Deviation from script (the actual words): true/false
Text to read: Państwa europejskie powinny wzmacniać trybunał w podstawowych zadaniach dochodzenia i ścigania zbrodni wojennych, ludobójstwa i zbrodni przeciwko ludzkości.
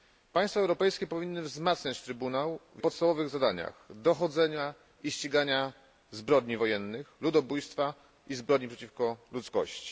false